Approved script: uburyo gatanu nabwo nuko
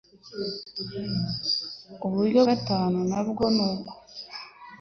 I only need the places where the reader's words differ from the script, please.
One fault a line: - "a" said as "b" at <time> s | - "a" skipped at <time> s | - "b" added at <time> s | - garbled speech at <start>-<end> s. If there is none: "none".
none